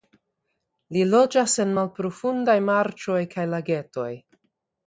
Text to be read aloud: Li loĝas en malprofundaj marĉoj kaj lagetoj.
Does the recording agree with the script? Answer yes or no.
yes